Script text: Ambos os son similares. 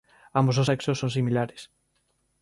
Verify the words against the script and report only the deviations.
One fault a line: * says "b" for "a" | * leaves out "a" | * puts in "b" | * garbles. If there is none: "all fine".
* puts in "sexos"